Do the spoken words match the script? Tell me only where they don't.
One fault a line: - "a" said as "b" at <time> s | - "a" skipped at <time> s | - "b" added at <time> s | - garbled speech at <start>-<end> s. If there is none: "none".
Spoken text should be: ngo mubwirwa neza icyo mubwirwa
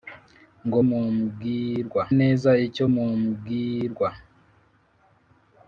none